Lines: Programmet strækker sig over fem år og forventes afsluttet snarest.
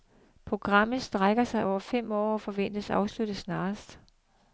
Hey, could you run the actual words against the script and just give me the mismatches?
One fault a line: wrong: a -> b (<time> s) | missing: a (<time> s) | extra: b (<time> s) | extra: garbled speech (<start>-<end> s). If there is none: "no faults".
no faults